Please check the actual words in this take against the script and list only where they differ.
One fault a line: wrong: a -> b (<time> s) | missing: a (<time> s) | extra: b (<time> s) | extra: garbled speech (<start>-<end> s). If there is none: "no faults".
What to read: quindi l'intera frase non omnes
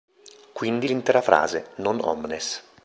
no faults